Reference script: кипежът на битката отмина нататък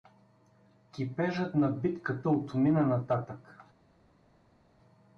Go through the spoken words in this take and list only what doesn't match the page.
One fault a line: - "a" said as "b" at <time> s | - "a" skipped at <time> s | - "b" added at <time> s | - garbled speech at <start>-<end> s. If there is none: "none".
none